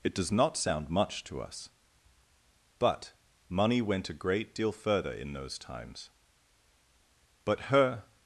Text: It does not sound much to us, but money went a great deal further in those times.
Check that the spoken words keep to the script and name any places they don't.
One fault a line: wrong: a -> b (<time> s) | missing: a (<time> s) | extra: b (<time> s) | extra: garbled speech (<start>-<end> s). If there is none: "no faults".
extra: But her (7.5 s)